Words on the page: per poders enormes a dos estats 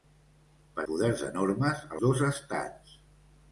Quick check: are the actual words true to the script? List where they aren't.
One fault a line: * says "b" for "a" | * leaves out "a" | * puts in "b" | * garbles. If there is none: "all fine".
all fine